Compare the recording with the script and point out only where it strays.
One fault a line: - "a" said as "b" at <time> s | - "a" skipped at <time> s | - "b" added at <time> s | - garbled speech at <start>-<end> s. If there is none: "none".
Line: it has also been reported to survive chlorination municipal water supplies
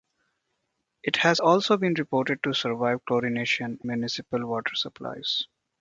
none